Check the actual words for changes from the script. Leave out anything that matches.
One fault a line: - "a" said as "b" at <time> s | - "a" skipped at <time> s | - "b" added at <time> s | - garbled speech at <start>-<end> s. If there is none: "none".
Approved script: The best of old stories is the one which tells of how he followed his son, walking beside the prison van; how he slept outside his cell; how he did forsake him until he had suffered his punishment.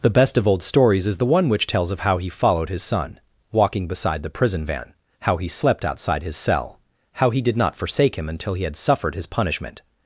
- "not" added at 7.5 s